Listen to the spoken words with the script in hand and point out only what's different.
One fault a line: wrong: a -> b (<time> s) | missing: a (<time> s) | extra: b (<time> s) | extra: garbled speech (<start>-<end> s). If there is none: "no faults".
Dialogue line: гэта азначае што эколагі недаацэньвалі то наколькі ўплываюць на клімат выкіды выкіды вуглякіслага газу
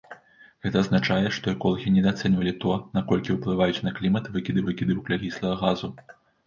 no faults